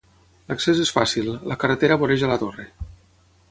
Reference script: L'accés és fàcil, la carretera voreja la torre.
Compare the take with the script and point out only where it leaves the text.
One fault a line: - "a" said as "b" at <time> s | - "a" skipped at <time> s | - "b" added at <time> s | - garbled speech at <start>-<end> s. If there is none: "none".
none